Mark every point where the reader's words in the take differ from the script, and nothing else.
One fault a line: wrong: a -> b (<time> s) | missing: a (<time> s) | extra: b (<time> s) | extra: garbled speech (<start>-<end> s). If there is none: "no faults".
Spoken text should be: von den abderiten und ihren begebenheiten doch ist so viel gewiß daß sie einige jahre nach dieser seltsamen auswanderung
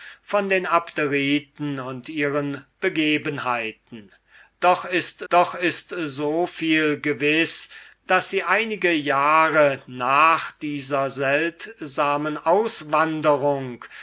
extra: doch ist (5.3 s)